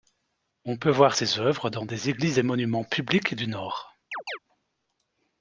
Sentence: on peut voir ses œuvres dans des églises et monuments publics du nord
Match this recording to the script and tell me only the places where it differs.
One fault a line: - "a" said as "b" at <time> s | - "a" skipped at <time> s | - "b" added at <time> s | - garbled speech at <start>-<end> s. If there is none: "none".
none